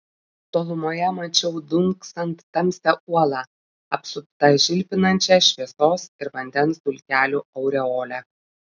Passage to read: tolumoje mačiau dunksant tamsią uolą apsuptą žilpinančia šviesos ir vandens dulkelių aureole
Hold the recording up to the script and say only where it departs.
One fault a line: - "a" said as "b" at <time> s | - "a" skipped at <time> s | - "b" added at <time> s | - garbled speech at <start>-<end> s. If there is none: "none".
none